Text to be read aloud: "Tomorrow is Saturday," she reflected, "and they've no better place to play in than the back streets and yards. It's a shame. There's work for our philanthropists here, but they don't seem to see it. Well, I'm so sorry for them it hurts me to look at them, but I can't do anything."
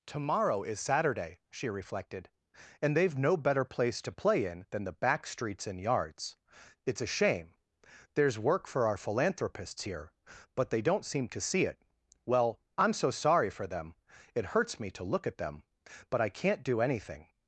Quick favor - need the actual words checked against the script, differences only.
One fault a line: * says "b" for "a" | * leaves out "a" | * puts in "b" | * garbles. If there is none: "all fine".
all fine